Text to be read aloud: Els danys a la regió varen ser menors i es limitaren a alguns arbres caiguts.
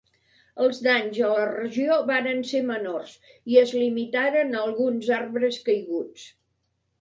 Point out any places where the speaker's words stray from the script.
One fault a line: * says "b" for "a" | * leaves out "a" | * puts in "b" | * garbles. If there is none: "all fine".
all fine